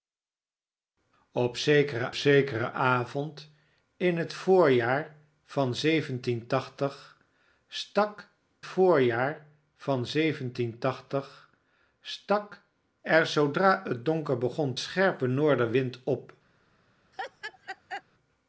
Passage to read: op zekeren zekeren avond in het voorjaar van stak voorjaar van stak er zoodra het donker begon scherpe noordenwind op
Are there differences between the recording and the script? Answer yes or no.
no